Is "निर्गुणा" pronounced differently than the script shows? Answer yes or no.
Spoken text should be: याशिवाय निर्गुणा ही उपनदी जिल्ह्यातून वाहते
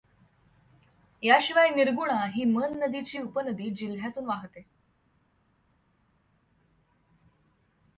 no